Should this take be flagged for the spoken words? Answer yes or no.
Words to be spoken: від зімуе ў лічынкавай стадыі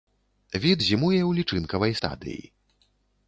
no